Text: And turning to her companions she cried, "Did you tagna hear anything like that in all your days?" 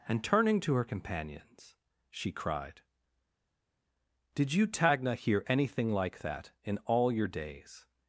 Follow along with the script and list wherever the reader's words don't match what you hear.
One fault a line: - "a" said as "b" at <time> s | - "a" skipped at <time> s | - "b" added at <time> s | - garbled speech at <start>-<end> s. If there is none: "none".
none